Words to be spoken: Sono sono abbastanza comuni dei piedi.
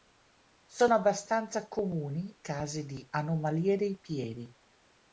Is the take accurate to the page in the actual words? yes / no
no